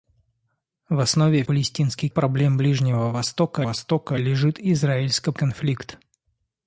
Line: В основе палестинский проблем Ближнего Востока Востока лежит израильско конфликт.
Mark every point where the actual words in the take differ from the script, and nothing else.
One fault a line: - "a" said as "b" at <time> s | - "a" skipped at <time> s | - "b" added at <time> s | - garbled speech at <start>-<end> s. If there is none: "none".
none